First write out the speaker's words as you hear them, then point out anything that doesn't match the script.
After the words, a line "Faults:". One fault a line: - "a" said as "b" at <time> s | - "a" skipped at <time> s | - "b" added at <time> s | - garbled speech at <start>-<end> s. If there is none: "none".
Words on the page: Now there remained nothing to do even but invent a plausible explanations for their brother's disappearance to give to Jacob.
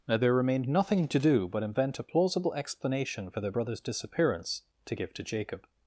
Now there remained nothing to do but invent a plausible explanation for their brother's disappearance to give to Jacob.
Faults:
- "even" skipped at 1.5 s
- "explanations" said as "explanation" at 2.5 s